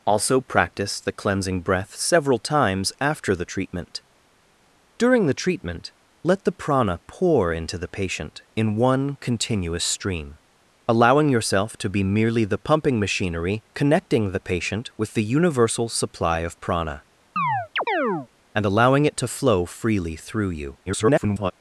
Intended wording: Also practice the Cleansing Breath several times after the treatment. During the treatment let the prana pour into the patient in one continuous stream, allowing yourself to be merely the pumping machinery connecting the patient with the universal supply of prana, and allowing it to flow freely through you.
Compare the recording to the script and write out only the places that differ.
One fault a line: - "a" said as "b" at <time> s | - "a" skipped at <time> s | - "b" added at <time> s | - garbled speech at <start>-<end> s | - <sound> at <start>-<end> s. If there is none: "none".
- chirp at 17.4-18.3 s
- garbled speech at 20.9-21.5 s